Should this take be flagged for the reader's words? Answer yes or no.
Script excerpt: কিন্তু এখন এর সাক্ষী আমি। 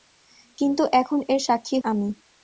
no